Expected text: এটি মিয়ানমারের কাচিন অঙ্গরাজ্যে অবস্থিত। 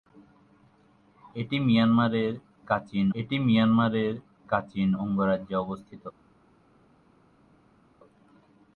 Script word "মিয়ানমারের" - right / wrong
right